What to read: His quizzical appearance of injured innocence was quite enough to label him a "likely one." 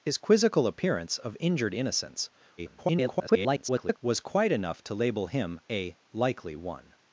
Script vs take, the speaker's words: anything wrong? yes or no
yes